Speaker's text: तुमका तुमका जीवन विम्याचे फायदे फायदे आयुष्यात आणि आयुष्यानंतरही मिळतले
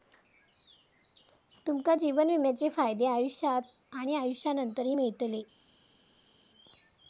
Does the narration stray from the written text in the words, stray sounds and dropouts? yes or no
yes